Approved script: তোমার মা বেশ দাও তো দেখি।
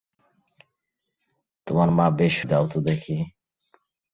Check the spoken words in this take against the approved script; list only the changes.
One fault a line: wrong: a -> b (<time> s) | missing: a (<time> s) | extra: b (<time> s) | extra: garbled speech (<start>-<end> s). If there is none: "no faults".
no faults